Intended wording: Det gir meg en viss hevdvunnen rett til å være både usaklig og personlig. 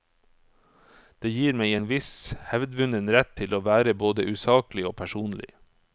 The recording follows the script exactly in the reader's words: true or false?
true